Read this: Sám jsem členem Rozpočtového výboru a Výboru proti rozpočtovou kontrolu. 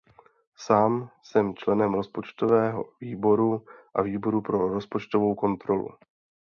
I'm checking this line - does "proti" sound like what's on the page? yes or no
no